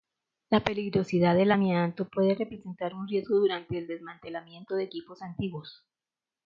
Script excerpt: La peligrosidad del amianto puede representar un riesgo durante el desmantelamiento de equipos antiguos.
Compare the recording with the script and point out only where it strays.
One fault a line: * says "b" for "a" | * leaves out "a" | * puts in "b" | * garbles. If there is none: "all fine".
all fine